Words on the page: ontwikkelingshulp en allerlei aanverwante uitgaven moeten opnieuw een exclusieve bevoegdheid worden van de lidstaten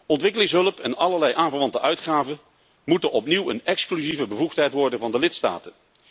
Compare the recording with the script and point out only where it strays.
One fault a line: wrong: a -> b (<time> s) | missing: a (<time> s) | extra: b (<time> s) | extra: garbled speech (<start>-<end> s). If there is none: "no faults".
no faults